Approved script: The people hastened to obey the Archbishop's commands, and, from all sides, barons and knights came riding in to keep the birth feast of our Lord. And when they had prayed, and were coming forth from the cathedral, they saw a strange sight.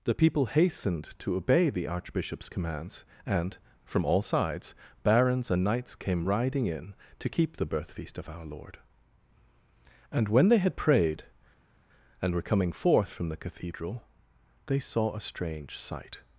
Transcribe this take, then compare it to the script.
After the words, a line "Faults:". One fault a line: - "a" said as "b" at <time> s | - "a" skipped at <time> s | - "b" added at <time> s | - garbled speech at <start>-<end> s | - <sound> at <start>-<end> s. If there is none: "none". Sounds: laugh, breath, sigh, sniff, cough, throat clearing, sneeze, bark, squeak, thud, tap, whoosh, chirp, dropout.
The people hastened to obey the Archbishop's commands, and, from all sides, barons and knights came riding in to keep the birth feast of our Lord. And when they had prayed, and were coming forth from the cathedral, they saw a strange sight.
Faults:
none